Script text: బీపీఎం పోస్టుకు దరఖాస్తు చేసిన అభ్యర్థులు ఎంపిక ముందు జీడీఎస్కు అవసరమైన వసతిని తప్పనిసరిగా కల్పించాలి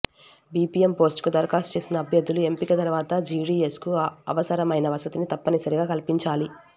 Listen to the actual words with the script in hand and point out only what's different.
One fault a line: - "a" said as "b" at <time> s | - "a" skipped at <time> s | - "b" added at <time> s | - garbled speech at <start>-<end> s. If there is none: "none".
- "ముందు" said as "తర్వాత" at 2.8 s